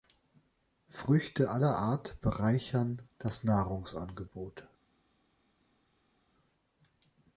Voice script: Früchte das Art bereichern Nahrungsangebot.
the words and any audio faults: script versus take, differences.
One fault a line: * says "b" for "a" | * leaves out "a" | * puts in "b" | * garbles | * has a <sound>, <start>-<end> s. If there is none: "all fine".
* says "aller" for "das"
* puts in "das"